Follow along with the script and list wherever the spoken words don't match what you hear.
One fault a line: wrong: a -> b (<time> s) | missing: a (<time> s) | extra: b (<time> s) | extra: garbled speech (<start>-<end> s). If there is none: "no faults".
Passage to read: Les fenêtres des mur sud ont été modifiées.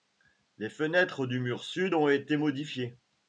wrong: des -> du (1.3 s)